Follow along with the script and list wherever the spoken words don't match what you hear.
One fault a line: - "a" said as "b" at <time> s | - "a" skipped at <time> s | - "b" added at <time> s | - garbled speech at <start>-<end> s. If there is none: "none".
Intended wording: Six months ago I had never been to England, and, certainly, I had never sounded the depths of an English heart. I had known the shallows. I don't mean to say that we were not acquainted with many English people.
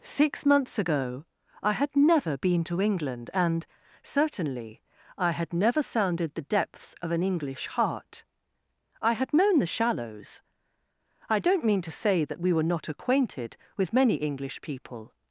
none